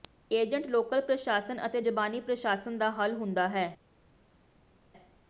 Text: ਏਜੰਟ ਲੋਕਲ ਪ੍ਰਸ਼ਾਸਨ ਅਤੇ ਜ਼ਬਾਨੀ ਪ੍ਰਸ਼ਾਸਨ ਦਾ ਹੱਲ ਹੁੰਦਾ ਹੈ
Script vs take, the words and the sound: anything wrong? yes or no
no